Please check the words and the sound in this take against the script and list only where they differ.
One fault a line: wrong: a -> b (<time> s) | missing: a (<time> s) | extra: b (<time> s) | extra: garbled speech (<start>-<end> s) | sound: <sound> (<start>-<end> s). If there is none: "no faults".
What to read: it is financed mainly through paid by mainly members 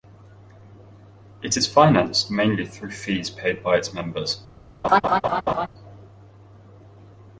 extra: fees (2.9 s)
wrong: mainly -> its (3.8 s)
sound: laugh (4.8-5.7 s)